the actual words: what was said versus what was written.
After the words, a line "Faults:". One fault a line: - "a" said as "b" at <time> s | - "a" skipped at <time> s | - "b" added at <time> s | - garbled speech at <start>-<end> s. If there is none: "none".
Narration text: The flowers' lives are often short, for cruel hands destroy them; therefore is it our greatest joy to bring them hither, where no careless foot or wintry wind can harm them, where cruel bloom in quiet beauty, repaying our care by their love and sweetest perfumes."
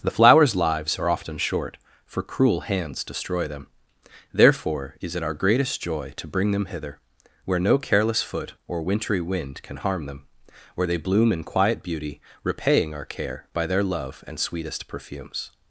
The flowers' lives are often short, for cruel hands destroy them; therefore is it our greatest joy to bring them hither, where no careless foot or wintry wind can harm them, where they bloom in quiet beauty, repaying our care by their love and sweetest perfumes."
Faults:
- "cruel" said as "they" at 10.9 s